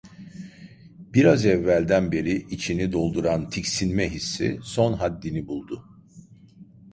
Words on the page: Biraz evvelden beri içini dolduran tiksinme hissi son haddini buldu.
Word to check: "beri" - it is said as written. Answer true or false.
true